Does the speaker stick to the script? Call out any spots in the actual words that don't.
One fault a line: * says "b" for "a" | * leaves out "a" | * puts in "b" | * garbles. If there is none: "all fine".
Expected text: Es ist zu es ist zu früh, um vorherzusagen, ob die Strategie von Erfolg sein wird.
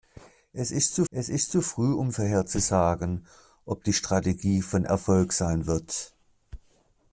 all fine